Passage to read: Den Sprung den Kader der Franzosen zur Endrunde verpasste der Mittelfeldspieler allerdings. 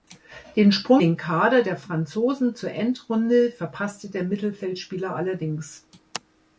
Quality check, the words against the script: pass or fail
pass